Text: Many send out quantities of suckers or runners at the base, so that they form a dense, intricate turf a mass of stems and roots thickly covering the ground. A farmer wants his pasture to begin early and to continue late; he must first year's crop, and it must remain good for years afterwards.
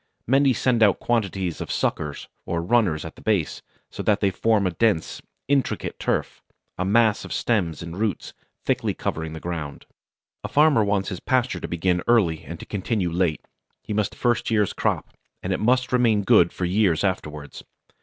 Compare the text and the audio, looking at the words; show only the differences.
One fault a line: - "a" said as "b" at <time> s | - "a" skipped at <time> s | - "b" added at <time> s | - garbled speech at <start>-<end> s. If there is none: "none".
none